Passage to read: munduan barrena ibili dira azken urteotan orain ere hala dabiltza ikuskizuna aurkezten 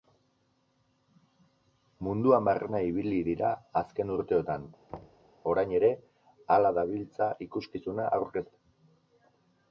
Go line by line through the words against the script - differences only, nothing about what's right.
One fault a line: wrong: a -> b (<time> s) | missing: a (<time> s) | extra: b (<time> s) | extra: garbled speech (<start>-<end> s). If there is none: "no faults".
no faults